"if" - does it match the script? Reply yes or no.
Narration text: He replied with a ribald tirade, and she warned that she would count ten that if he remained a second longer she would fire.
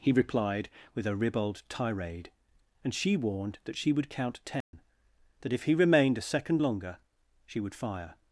yes